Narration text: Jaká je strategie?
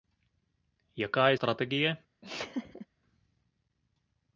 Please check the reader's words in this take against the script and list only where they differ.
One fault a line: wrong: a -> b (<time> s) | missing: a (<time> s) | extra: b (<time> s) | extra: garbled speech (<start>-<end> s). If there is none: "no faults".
no faults